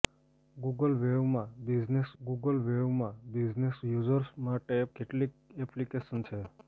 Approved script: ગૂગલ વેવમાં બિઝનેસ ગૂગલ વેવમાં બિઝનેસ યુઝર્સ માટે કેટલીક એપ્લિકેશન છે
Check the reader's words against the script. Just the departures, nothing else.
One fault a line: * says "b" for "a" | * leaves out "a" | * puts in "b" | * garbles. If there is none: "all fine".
all fine